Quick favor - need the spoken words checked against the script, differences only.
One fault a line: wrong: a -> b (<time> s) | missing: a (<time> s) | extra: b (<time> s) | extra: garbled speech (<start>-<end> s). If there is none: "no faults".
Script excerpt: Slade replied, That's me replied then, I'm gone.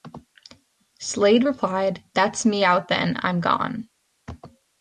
wrong: replied -> out (2.6 s)